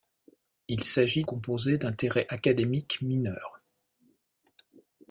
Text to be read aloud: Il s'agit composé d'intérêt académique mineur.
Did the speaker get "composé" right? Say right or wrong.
right